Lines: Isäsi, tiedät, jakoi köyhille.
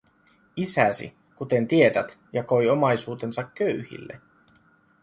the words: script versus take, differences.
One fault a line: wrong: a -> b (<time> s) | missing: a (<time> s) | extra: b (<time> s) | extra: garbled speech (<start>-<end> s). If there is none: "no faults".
extra: kuten (1.4 s)
extra: omaisuutensa (2.7 s)